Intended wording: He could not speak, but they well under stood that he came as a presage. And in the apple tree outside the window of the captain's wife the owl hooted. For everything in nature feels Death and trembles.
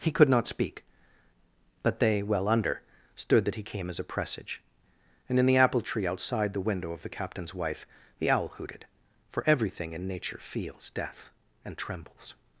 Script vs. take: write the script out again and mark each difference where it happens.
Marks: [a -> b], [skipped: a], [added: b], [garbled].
He could not speak, but they well under stood that he came as a presage. And in the apple tree outside the window of the captain's wife the owl hooted. For everything in nature feels Death and trembles.